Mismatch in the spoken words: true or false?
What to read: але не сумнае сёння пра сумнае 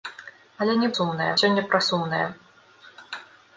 false